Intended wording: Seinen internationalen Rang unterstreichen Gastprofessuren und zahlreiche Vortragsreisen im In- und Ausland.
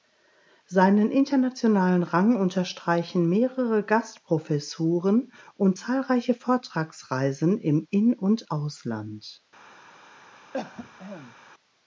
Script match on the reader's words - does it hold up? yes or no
no